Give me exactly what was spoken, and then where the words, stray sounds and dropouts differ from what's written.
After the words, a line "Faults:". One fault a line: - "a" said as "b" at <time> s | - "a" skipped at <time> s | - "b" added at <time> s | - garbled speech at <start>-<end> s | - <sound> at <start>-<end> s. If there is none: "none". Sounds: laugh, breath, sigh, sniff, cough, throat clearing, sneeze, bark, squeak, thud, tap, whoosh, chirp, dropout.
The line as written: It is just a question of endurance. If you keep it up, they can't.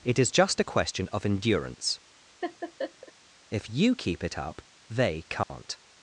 It is just a question of endurance. If you keep it up, they can't.
Faults:
- laugh at 2.4-3.1 s
- dropout at 5.4-5.5 s